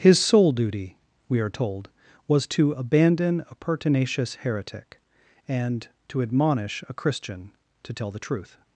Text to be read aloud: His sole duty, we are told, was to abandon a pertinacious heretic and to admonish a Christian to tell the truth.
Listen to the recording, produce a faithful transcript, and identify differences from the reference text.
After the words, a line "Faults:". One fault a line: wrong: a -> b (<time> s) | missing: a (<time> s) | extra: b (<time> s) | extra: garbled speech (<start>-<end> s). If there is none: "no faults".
His sole duty, we are told, was to abandon a pertinacious heretic and to admonish a Christian to tell the truth.
Faults:
no faults